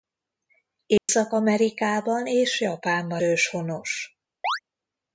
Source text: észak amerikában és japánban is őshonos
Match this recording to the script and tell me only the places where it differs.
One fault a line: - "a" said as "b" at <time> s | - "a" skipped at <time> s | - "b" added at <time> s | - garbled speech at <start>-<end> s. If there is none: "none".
- "is" skipped at 3.2 s